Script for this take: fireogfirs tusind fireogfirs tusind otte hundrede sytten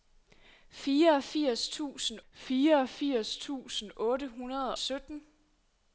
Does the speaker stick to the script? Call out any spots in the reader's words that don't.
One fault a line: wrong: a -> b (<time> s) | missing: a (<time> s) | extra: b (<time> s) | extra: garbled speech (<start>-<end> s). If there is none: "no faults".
no faults